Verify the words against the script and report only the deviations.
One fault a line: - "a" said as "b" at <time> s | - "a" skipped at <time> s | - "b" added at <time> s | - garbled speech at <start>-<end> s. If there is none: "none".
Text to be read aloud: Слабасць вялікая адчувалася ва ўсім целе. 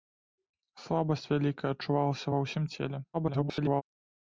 - garbled speech at 3.1-3.8 s